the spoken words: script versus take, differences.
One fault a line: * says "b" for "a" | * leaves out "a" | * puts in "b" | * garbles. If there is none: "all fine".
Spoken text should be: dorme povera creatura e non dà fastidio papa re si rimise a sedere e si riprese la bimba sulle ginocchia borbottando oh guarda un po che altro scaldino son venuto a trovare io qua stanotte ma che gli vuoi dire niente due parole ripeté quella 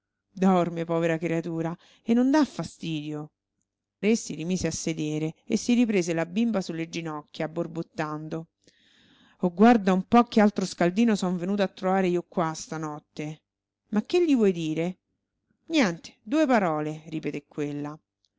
* leaves out "papa"